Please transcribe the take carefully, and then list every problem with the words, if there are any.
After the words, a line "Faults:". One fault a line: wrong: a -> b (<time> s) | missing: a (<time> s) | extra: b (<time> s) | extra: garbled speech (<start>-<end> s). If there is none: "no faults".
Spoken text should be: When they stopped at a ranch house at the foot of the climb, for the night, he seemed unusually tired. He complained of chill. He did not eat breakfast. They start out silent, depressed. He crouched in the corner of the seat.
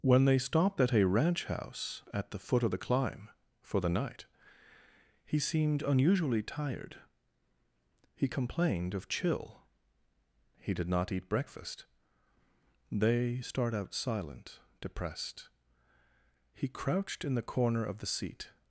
When they stopped at a ranch house at the foot of the climb, for the night, he seemed unusually tired. He complained of chill. He did not eat breakfast. They start out silent, depressed. He crouched in the corner of the seat.
Faults:
no faults